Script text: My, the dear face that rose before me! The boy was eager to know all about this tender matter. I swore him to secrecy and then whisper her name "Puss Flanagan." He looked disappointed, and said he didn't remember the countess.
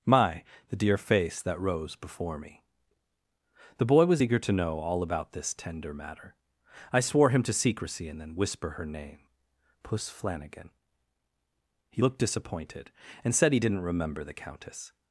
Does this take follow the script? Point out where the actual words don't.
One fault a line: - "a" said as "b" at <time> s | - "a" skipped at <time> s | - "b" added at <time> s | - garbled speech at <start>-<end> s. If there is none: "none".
none